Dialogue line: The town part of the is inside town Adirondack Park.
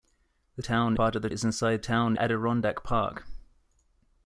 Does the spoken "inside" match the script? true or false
true